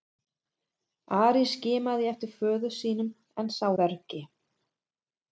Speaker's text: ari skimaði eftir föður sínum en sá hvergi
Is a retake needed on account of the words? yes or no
no